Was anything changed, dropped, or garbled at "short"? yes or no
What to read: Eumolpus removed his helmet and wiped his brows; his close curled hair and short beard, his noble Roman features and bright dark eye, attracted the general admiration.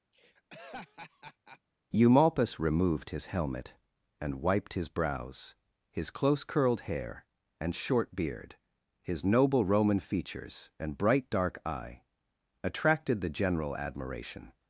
no